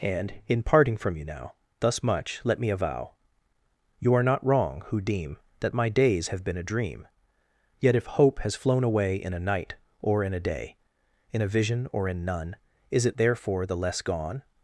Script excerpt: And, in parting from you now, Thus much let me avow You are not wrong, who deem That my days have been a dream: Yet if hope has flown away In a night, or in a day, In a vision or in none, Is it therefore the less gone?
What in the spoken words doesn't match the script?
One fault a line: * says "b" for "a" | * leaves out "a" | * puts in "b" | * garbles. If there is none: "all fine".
all fine